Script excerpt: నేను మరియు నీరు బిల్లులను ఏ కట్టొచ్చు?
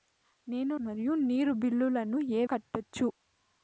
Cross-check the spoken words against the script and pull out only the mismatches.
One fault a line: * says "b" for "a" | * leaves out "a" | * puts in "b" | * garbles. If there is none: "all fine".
all fine